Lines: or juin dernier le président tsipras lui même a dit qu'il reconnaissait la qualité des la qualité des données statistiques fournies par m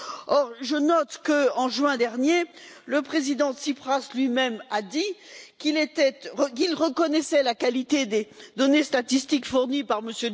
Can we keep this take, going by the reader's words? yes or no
no